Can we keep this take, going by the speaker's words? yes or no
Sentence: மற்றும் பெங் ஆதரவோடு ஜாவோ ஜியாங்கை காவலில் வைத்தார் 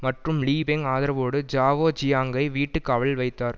no